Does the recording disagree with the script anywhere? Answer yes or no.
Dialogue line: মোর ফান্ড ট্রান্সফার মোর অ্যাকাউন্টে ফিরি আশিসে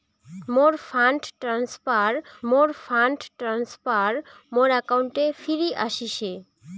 yes